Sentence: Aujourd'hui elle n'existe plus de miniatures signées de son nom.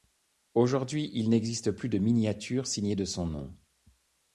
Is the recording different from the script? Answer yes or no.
yes